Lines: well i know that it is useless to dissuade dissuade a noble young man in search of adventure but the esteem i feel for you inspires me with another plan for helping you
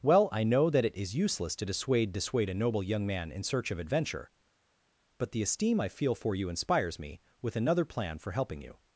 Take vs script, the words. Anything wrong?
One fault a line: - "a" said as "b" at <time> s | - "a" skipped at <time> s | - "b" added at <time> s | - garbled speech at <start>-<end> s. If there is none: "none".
none